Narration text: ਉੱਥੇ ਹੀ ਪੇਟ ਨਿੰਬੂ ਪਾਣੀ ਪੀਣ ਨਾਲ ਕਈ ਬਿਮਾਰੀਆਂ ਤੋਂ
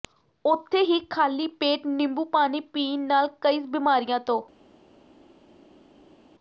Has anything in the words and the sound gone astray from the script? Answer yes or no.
yes